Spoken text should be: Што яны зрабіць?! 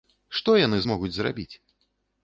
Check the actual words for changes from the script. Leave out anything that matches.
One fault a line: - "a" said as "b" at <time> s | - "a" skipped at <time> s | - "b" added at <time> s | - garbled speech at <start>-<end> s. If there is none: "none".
- "змогуць" added at 0.8 s